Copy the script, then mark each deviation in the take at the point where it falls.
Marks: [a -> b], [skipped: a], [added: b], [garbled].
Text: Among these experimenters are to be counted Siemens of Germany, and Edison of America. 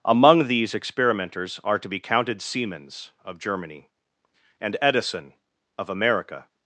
Among these experimenters are to be counted Siemens of Germany, and Edison of America.